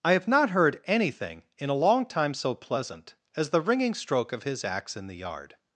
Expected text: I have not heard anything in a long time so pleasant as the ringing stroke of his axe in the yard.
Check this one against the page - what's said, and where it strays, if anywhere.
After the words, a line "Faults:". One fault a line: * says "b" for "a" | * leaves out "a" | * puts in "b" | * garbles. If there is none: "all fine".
I have not heard anything in a long time so pleasant as the ringing stroke of his axe in the yard.
Faults:
all fine